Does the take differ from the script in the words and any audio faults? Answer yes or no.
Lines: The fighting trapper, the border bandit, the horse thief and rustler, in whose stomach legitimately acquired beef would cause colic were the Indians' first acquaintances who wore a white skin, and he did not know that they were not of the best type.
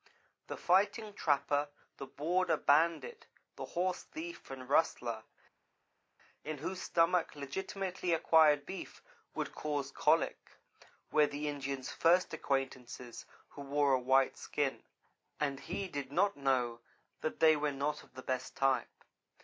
no